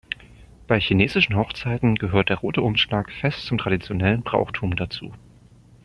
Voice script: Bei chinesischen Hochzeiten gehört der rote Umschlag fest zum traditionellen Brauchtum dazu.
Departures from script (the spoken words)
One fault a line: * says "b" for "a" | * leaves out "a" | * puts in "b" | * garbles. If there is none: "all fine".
all fine